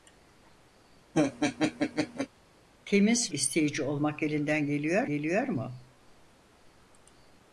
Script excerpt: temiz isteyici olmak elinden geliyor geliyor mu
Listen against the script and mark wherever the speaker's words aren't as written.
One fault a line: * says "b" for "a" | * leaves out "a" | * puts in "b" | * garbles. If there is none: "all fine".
all fine